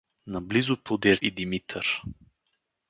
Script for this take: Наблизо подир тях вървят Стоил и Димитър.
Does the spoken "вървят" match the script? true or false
false